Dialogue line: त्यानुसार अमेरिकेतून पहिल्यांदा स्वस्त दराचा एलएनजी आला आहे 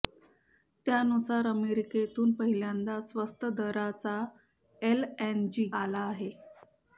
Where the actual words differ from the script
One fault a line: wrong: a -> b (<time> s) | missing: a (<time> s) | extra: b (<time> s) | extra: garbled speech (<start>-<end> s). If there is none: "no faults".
no faults